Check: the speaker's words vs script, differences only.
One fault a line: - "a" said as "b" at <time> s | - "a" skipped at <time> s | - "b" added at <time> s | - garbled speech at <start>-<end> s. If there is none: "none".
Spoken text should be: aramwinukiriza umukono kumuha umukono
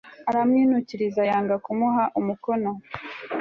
- "umukono" said as "yanga" at 1.3 s